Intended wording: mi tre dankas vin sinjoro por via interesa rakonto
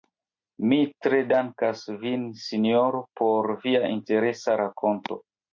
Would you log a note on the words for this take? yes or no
no